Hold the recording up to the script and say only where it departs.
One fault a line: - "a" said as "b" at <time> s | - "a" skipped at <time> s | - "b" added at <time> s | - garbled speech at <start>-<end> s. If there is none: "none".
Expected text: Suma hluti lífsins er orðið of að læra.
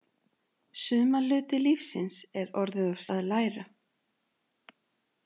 none